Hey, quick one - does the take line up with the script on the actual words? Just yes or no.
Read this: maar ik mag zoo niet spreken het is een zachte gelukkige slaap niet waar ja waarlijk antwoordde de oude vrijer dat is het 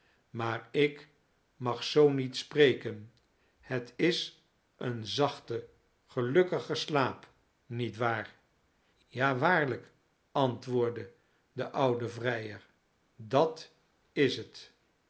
yes